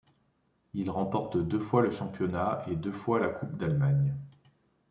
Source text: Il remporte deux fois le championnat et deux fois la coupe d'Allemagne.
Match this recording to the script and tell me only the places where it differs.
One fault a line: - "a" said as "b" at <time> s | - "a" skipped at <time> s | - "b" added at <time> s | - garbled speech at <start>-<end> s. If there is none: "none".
none